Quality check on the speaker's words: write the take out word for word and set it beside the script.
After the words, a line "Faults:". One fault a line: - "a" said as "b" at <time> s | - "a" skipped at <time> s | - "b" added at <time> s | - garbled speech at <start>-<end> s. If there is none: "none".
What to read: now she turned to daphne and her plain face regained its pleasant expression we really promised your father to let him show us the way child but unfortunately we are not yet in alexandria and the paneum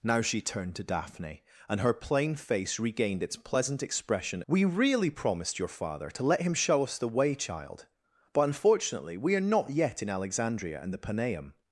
now she turned to daphne and her plain face regained its pleasant expression we really promised your father to let him show us the way child but unfortunately we are not yet in alexandria and the paneum
Faults:
none